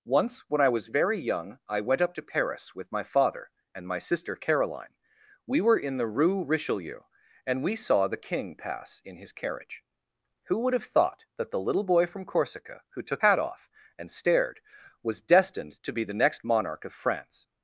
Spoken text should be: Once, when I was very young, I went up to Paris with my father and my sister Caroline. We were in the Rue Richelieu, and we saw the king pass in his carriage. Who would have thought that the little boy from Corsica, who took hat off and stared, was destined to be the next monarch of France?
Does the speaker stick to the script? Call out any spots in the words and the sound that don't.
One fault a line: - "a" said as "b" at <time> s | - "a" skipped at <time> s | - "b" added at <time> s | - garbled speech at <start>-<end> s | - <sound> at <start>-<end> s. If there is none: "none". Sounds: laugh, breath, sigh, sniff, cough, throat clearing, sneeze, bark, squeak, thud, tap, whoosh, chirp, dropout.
none